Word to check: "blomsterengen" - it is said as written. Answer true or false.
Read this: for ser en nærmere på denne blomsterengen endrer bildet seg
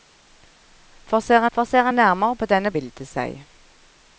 false